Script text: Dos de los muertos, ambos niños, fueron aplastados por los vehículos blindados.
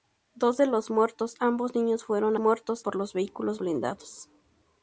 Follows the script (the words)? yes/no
no